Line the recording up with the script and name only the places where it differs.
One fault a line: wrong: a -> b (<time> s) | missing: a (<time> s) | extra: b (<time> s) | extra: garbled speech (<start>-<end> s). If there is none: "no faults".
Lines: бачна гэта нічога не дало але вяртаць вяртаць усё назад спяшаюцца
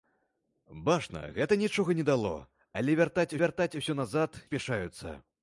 no faults